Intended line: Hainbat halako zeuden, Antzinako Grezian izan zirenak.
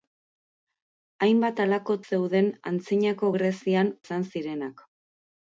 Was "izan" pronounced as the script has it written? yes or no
yes